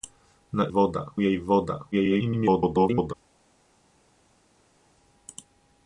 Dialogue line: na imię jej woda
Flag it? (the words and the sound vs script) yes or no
yes